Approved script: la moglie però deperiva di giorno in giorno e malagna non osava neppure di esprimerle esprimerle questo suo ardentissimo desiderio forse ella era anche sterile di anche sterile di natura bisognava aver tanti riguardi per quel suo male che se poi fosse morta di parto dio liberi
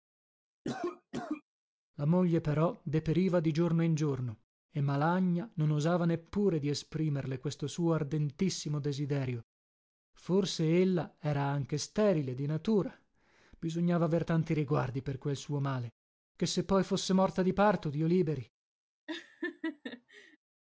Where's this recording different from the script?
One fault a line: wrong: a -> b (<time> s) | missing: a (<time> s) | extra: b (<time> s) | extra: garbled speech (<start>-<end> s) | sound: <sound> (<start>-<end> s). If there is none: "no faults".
sound: cough (0.6-1.4 s)
missing: esprimerle (7.4 s)
missing: anche sterile di (12.5 s)
sound: laugh (19.1-20.4 s)